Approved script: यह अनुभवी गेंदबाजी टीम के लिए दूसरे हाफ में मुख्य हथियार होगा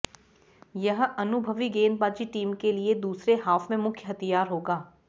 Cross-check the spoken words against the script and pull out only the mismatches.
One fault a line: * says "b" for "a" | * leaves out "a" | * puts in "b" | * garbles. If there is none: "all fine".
all fine